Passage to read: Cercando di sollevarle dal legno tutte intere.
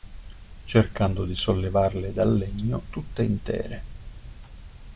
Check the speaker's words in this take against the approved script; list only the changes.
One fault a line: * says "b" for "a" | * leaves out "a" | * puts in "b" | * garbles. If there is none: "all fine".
all fine